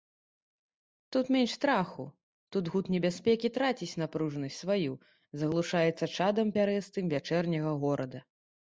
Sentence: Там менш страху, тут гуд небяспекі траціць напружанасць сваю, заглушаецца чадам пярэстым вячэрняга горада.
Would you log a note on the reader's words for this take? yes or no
yes